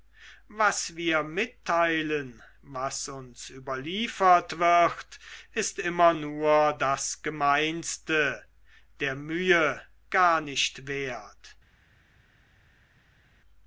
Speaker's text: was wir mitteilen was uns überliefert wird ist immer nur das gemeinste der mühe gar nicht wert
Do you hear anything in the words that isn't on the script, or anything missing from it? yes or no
no